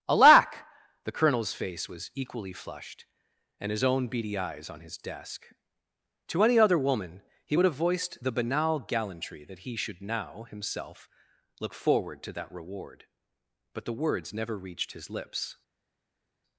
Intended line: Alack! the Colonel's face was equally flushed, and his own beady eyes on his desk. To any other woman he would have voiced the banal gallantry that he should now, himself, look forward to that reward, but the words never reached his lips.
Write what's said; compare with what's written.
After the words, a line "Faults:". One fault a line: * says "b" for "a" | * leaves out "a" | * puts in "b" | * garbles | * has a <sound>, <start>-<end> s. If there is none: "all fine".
Alack! the Colonel's face was equally flushed, and his own beady eyes on his desk. To any other woman he would have voiced the banal gallantry that he should now, himself, look forward to that reward, but the words never reached his lips.
Faults:
all fine